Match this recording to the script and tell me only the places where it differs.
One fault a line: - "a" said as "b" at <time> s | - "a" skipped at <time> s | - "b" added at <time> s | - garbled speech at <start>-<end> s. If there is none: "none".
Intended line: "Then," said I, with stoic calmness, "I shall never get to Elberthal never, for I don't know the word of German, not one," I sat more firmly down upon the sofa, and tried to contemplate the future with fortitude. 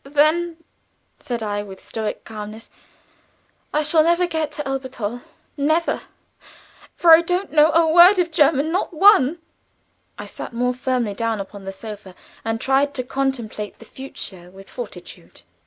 - "the" said as "a" at 7.7 s